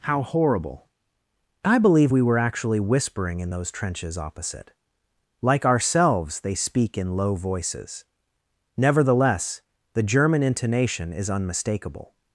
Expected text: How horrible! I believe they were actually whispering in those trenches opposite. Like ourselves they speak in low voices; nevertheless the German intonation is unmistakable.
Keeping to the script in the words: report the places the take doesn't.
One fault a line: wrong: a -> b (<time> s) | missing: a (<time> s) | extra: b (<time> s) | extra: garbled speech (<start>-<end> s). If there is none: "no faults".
wrong: they -> we (2.1 s)